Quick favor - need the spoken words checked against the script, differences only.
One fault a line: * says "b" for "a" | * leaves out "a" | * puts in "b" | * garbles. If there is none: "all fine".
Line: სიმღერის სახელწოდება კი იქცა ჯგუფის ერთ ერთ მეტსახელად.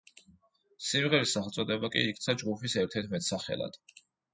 all fine